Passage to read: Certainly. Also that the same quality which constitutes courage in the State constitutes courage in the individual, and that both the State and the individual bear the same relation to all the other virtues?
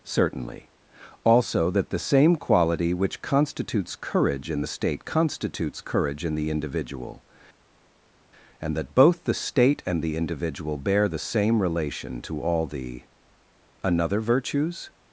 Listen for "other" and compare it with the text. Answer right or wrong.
wrong